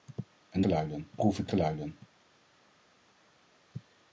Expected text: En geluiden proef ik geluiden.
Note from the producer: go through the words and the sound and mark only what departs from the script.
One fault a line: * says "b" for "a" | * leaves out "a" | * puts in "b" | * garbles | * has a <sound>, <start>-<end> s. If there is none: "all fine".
all fine